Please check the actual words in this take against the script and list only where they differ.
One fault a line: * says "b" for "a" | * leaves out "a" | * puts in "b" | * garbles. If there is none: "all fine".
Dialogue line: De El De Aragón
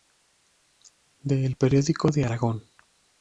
* puts in "Periódico"